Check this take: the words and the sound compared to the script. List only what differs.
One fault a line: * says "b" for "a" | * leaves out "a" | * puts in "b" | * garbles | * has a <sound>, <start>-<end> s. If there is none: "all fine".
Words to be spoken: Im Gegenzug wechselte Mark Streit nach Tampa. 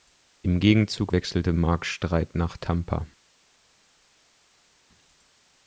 all fine